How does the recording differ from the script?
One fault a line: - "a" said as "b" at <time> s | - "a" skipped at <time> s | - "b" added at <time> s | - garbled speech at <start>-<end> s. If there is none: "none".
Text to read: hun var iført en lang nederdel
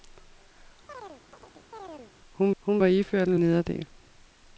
- "hun" added at 2.6 s
- "lang" skipped at 3.4 s